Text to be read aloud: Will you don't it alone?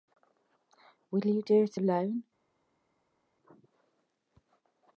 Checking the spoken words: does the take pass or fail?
fail